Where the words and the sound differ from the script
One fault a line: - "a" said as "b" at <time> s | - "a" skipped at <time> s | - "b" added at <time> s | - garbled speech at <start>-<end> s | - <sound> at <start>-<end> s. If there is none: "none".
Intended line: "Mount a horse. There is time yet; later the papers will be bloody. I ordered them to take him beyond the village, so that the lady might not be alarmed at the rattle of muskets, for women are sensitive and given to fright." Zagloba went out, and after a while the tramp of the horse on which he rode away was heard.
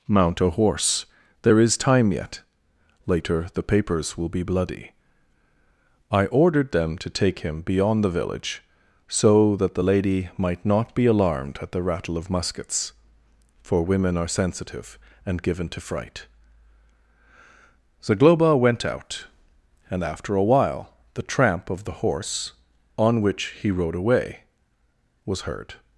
none